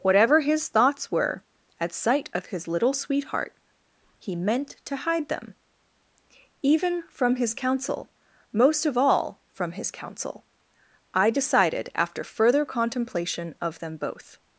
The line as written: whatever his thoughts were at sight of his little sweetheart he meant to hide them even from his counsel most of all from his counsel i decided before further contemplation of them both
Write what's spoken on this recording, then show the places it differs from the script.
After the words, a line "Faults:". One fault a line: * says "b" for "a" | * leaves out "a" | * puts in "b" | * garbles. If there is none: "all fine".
whatever his thoughts were at sight of his little sweetheart he meant to hide them even from his counsel most of all from his counsel i decided after further contemplation of them both
Faults:
* says "after" for "before"